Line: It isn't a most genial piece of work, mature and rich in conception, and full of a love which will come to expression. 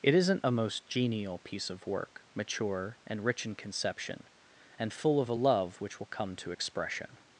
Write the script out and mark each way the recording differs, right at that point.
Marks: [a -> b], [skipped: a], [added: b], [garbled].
It isn't a most genial piece of work, mature and rich in conception, and full of a love which will come to expression.